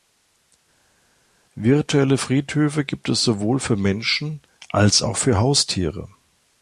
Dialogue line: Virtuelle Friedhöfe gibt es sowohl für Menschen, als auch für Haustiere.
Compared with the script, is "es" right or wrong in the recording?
right